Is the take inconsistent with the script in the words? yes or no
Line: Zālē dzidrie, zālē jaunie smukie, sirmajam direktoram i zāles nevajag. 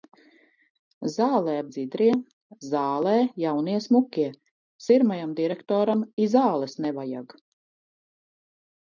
no